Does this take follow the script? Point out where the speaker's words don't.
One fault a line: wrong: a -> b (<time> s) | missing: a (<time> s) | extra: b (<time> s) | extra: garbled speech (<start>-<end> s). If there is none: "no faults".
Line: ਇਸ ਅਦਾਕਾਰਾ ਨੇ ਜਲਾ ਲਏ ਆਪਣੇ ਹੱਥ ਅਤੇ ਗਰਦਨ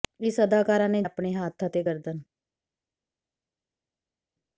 missing: ਜਲਾ ਲਏ (1.0 s)